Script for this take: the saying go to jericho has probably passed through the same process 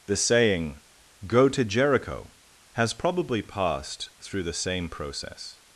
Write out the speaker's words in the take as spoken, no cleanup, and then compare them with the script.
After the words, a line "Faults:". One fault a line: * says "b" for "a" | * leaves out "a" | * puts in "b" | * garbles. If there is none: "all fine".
the saying go to jericho has probably passed through the same process
Faults:
all fine